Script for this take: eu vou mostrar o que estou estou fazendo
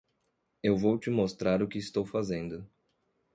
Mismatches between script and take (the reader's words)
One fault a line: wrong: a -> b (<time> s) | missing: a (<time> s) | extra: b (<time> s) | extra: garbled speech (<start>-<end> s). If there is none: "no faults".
extra: te (1.0 s)
missing: estou (2.1 s)